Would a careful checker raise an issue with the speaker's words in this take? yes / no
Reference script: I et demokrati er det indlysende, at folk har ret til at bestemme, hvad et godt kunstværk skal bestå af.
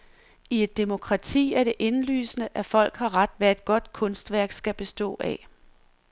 yes